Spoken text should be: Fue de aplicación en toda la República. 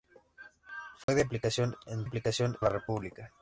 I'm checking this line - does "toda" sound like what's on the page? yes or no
no